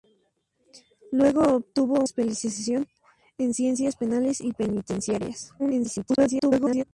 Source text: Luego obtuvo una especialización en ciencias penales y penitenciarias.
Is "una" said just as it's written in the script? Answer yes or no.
no